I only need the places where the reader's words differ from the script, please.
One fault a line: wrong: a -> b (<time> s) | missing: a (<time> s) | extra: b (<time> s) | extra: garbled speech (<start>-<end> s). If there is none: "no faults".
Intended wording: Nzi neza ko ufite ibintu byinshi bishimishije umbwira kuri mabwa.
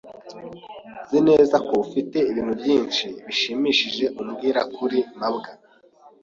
no faults